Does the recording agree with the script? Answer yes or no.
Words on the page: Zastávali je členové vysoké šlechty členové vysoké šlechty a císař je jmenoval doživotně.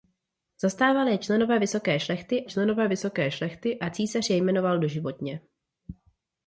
yes